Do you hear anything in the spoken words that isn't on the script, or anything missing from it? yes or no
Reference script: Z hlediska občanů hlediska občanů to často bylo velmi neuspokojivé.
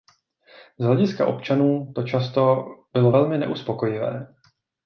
yes